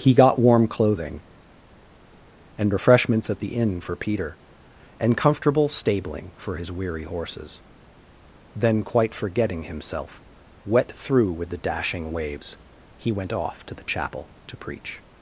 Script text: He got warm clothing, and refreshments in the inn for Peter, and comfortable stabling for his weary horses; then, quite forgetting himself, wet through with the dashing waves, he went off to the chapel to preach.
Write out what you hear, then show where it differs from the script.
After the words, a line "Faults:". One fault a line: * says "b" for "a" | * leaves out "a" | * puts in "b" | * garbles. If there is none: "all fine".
He got warm clothing, and refreshments at the inn for Peter, and comfortable stabling for his weary horses; then, quite forgetting himself, wet through with the dashing waves, he went off to the chapel to preach.
Faults:
* says "at" for "in"